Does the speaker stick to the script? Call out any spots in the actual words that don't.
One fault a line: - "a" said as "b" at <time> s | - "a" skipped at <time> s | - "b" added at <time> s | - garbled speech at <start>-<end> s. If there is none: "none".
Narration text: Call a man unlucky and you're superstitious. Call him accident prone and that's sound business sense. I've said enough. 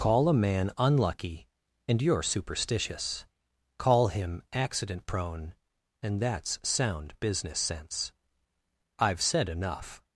none